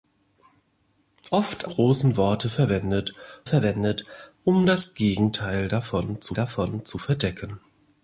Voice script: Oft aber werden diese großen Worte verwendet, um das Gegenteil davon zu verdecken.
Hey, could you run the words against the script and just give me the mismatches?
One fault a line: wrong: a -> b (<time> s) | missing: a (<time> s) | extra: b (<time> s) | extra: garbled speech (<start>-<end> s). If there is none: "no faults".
missing: aber werden diese (1.7 s)
extra: verwendet (3.4 s)
extra: davon zu (6.3 s)